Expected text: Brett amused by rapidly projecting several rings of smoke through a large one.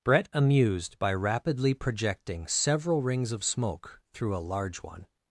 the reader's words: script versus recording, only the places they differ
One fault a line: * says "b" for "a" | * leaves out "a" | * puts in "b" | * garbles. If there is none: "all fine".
all fine